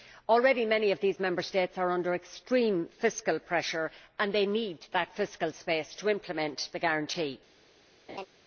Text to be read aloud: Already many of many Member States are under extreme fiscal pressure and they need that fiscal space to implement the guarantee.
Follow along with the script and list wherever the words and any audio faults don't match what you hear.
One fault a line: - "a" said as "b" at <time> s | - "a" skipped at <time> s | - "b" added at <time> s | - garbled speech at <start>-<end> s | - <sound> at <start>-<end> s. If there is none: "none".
- "many" said as "these" at 1.0 s
- laugh at 8.1-8.3 s